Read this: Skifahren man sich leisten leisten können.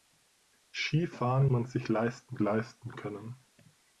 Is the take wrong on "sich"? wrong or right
right